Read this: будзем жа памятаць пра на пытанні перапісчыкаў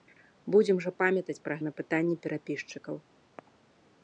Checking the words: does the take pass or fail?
pass